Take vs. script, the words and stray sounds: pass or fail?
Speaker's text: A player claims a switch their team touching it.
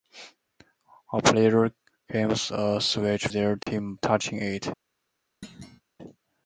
fail